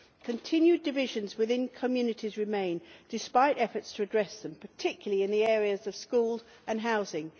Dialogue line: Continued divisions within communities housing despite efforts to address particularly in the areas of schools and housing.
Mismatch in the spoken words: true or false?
true